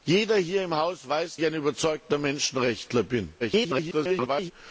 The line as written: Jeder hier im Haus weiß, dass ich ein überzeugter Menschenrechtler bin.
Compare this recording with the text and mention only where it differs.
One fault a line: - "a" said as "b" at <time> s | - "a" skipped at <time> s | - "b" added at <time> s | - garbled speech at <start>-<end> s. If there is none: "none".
- "dass" skipped at 1.4 s
- garbled speech at 3.4-4.5 s